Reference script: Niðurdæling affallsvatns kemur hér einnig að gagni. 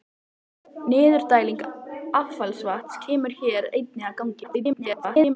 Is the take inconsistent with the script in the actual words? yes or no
yes